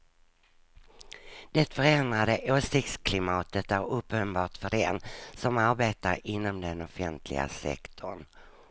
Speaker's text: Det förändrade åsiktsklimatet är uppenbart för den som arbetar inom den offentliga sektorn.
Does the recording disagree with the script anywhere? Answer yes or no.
no